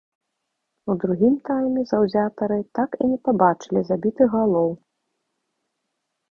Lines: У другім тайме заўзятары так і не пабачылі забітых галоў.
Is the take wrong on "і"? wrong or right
right